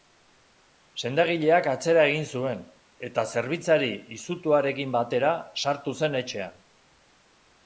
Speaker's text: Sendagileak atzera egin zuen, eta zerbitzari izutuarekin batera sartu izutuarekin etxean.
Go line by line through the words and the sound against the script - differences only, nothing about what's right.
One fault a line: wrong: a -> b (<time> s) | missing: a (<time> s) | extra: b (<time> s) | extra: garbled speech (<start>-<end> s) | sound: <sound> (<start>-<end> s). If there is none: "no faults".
wrong: izutuarekin -> zen (6.0 s)